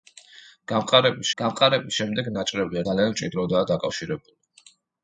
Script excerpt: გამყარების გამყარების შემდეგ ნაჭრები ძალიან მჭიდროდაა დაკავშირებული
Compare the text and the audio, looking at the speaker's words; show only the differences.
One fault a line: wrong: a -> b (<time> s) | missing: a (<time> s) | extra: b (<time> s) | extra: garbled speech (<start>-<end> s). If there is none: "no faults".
no faults